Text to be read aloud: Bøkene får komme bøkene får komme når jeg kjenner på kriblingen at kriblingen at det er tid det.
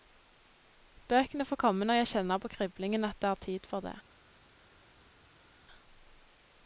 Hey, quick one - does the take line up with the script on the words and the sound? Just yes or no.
no